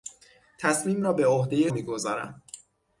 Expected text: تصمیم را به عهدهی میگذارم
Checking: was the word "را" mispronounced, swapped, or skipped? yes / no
no